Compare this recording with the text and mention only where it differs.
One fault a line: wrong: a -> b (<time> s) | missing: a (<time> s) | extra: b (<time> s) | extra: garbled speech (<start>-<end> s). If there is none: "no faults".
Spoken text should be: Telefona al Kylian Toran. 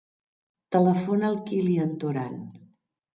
no faults